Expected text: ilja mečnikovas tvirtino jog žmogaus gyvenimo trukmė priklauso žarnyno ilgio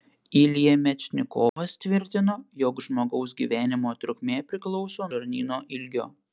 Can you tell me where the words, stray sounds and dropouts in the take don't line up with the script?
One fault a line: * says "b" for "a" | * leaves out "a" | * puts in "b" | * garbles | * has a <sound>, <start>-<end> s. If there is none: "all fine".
* has a dropout, 1.5-1.6 s